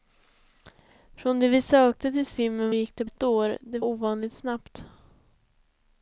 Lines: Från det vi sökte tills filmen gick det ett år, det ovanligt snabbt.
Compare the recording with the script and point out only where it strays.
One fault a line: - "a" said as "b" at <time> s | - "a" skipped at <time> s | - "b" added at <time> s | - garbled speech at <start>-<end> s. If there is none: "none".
none